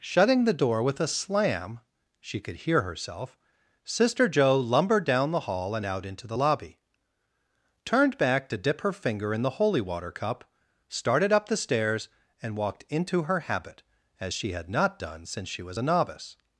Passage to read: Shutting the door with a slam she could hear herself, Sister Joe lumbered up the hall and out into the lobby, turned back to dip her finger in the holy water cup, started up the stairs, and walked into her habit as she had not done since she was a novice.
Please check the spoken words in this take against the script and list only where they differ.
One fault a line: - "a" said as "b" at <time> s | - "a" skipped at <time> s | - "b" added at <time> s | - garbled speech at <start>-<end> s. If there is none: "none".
- "up" said as "down" at 5.0 s